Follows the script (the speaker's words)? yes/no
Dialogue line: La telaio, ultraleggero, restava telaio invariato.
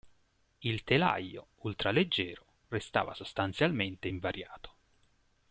no